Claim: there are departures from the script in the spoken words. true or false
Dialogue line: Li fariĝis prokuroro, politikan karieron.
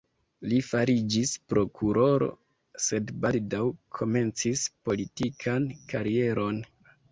true